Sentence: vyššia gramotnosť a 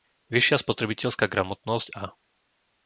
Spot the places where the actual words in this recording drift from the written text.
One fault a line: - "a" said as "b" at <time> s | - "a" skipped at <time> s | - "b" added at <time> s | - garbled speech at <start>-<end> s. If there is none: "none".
- "spotrebiteľská" added at 0.7 s